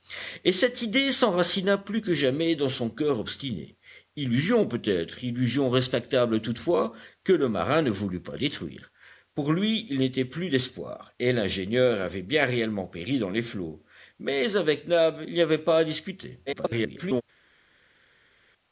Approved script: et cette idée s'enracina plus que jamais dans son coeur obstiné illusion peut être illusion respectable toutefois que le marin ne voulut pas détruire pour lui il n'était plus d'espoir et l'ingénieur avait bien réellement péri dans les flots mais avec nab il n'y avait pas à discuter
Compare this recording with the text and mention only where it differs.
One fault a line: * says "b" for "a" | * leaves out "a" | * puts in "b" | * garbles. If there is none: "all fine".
* garbles